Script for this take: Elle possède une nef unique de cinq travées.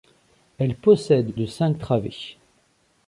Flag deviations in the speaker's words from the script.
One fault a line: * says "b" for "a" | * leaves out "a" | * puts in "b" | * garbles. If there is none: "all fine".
* leaves out "une nef unique"